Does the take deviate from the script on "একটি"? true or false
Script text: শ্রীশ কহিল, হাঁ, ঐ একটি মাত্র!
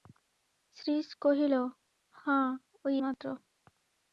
true